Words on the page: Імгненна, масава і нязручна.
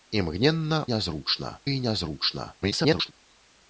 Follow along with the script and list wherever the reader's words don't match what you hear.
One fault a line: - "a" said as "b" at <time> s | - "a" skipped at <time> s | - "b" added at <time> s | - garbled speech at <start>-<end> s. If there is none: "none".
- "масава" said as "нязручна" at 0.9 s
- garbled speech at 2.6-3.1 s